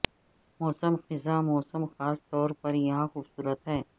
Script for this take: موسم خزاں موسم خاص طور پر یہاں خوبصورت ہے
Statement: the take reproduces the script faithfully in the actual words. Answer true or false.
true